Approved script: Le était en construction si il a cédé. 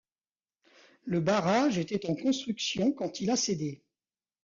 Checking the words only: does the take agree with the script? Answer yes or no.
no